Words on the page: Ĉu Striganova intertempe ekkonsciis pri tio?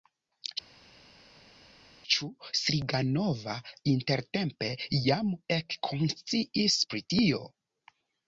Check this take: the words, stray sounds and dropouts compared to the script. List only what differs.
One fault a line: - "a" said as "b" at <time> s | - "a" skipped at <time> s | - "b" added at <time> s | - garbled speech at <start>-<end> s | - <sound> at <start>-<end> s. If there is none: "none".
- "jam" added at 5.1 s